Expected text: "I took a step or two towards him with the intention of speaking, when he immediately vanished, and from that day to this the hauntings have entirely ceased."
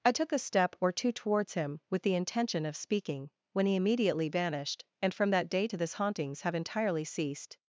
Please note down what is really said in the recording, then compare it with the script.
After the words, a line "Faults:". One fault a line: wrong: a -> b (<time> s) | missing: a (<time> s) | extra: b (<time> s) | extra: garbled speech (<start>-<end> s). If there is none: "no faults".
"I took a step or two towards him with the intention of speaking, when he immediately vanished, and from that day to this hauntings have entirely ceased."
Faults:
missing: the (5.9 s)